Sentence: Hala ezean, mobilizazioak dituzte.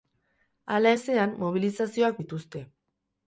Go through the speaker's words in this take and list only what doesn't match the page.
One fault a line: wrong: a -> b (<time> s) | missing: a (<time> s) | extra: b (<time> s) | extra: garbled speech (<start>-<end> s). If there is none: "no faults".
no faults